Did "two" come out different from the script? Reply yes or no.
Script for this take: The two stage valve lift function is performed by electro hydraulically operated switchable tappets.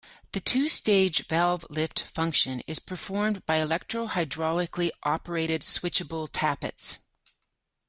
no